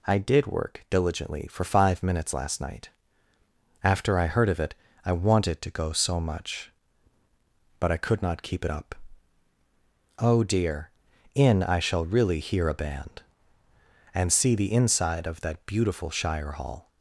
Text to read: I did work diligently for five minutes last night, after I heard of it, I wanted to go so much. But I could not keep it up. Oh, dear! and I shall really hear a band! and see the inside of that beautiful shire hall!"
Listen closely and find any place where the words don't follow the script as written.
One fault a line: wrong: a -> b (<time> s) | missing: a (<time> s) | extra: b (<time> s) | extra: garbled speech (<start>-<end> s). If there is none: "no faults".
wrong: and -> in (11.3 s)